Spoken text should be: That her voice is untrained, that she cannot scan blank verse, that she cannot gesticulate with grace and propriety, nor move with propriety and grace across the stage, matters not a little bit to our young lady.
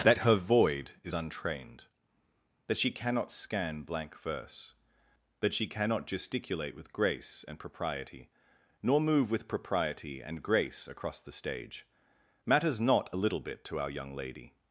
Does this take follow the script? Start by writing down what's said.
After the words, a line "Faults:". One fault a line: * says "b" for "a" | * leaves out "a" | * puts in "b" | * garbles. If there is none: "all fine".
That her void is untrained, that she cannot scan blank verse, that she cannot gesticulate with grace and propriety, nor move with propriety and grace across the stage, matters not a little bit to our young lady.
Faults:
* says "void" for "voice"